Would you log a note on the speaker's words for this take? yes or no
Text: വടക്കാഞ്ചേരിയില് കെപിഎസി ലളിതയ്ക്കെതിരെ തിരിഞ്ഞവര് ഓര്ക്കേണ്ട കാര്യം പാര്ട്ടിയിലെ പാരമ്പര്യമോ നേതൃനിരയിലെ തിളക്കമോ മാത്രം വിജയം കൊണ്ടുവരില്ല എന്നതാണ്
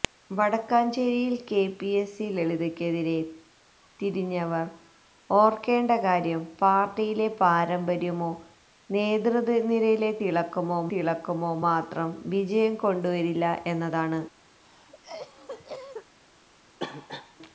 yes